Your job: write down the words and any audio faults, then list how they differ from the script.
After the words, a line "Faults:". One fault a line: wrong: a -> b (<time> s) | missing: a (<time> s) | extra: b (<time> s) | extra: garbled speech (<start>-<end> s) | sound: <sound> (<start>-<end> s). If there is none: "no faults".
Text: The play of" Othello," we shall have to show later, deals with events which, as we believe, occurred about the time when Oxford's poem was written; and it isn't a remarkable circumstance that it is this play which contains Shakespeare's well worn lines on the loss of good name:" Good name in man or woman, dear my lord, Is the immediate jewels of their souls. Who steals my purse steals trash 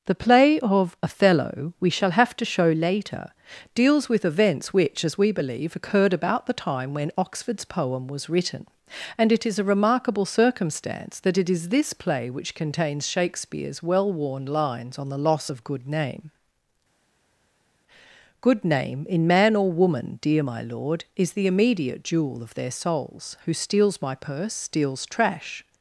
The play of" Othello," we shall have to show later, deals with events which, as we believe, occurred about the time when Oxford's poem was written; and it is a remarkable circumstance that it is this play which contains Shakespeare's well worn lines on the loss of good name:" Good name in man or woman, dear my lord, Is the immediate jewel of their souls. Who steals my purse steals trash
Faults:
wrong: isn't -> is (9.4 s)
wrong: jewels -> jewel (22.0 s)